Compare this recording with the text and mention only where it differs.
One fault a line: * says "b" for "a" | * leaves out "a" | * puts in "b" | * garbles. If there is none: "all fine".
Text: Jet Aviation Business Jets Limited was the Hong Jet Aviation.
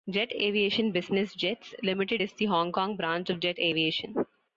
* says "is" for "was"
* puts in "Kong branch of"